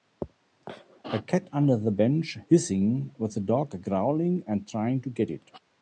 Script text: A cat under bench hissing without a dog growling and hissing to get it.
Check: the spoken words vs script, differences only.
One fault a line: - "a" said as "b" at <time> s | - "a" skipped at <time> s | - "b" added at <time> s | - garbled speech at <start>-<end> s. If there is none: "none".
- "the" added at 1.8 s
- "without" said as "with" at 3.2 s
- "hissing" said as "trying" at 4.7 s